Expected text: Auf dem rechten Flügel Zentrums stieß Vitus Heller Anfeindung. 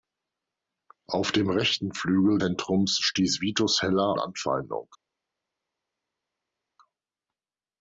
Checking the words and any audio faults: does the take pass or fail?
pass